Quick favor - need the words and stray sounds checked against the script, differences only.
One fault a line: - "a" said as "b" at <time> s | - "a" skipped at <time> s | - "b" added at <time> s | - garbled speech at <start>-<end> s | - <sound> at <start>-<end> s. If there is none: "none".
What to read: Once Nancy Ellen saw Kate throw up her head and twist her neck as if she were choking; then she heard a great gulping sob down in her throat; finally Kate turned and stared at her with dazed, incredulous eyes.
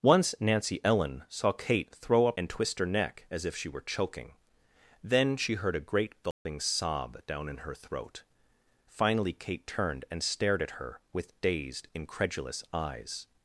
- "her head" skipped at 2.4 s
- dropout at 6.3-6.5 s